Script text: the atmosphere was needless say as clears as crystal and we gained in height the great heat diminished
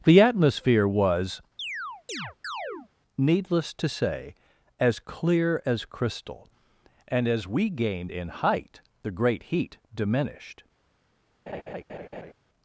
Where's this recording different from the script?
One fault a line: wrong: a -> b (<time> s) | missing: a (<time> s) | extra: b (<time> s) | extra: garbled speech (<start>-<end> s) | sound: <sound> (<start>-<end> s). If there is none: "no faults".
sound: chirp (1.6-2.9 s)
extra: to (3.7 s)
wrong: clears -> clear (5.0 s)
extra: as (7.3 s)
sound: laugh (11.5-12.3 s)